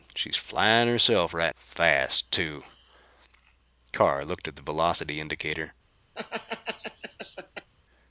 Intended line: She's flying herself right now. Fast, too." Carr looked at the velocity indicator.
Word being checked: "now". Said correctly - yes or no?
no